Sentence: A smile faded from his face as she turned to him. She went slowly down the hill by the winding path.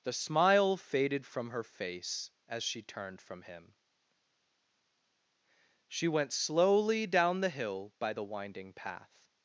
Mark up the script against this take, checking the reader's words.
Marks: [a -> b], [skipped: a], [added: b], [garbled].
[A -> The] smile faded from [his -> her] face as she turned [to -> from] him. She went slowly down the hill by the winding path.